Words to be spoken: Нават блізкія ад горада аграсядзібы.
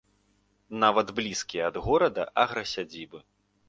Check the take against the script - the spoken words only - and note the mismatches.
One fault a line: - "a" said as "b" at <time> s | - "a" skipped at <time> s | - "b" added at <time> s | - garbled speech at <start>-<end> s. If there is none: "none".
none